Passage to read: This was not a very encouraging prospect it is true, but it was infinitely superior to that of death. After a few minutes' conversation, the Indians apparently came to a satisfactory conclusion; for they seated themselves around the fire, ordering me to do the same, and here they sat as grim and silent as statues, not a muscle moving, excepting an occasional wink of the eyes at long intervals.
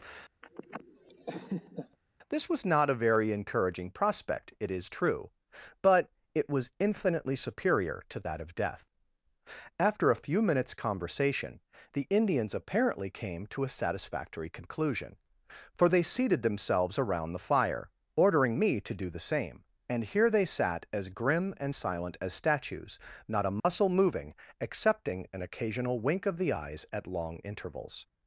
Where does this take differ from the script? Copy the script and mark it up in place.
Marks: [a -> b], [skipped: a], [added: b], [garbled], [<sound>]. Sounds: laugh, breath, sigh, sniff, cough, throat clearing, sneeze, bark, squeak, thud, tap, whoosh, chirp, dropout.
[laugh] This was not a very encouraging prospect it is true, but it was infinitely superior to that of death. After a few minutes' conversation, the Indians apparently came to a satisfactory conclusion; for they seated themselves around the fire, ordering me to do the same, and here they sat as grim and silent as statues, not a muscle [dropout] moving, excepting an occasional wink of the eyes at long intervals.